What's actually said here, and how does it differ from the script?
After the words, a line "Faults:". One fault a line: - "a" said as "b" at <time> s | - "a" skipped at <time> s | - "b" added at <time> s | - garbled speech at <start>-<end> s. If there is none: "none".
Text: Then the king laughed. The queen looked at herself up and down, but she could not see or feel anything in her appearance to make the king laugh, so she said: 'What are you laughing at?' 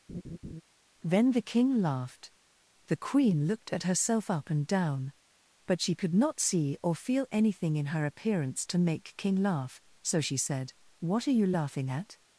Then the king laughed. The queen looked at herself up and down, but she could not see or feel anything in her appearance to make king laugh, so she said: 'What are you laughing at?'
Faults:
- "the" skipped at 9.1 s